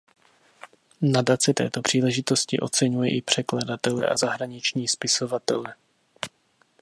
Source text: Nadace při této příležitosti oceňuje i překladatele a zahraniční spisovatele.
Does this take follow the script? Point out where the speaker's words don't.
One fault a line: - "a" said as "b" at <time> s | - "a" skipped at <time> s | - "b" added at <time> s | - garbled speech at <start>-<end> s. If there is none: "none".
- "při" skipped at 1.5 s